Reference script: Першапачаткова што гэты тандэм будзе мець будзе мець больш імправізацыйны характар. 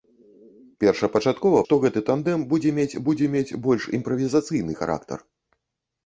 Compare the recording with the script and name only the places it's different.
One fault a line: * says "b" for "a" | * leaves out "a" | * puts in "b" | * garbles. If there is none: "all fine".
all fine